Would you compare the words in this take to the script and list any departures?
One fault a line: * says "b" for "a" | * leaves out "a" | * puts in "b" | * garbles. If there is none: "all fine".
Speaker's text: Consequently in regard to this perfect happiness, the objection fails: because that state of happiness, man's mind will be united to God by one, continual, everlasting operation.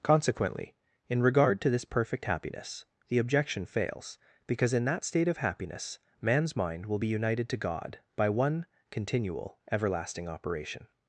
* puts in "in"